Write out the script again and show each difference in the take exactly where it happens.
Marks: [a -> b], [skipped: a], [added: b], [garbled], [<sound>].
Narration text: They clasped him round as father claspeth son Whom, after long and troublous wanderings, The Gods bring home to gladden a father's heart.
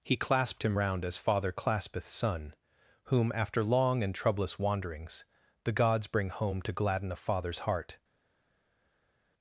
[They -> He] clasped him round as father claspeth son Whom, after long and troublous wanderings, The Gods bring home to gladden a father's heart.